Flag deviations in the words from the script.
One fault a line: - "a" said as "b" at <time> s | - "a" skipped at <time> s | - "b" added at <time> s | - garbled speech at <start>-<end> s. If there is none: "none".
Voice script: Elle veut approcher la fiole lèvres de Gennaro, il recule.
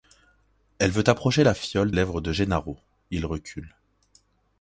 none